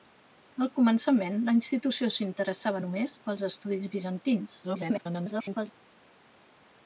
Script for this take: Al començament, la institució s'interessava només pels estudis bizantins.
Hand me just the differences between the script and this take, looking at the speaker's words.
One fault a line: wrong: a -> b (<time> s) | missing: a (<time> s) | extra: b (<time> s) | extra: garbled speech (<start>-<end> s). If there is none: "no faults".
extra: garbled speech (4.6-5.7 s)